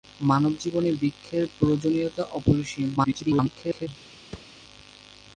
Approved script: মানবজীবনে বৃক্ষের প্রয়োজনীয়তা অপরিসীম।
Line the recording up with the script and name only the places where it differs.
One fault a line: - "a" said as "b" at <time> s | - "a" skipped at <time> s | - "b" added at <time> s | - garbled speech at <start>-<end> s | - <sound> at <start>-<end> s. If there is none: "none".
- garbled speech at 3.0-3.9 s
- thud at 4.3-4.5 s